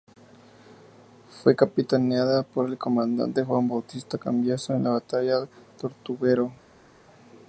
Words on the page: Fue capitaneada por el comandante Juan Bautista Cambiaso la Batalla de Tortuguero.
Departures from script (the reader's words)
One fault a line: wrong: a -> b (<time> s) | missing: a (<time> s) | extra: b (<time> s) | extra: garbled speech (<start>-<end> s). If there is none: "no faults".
extra: en (4.7 s)